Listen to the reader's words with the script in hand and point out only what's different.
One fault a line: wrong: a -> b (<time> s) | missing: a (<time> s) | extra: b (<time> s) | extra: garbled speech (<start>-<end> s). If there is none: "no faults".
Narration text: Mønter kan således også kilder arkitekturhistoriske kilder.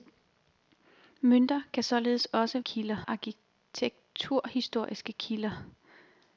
no faults